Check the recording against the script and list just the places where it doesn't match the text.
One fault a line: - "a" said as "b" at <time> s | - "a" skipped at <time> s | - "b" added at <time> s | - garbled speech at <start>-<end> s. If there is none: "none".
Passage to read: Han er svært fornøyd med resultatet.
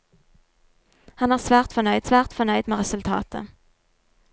- "svært fornøyd" added at 2.0 s